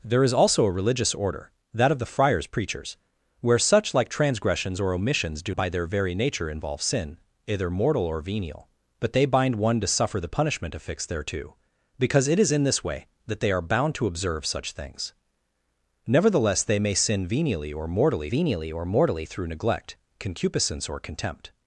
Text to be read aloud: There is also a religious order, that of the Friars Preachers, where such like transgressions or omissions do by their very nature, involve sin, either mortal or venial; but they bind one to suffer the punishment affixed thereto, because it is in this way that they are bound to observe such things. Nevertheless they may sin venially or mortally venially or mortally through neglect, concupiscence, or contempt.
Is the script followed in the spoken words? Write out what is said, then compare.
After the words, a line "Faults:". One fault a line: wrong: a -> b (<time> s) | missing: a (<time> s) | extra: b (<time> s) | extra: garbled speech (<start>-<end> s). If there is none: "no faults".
There is also a religious order, that of the Friars Preachers, where such like transgressions or omissions do by their very nature, involve sin, either mortal or venial; but they bind one to suffer the punishment affixed thereto, because it is in this way that they are bound to observe such things. Nevertheless they may sin venially or mortally venially or mortally through neglect, concupiscence, or contempt.
Faults:
no faults